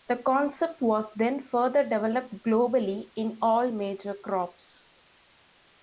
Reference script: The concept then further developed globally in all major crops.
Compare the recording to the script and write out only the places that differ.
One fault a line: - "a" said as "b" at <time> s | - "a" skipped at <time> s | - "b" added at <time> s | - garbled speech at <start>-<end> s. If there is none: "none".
- "was" added at 0.8 s